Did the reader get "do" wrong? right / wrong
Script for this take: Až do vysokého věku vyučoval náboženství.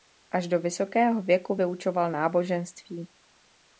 right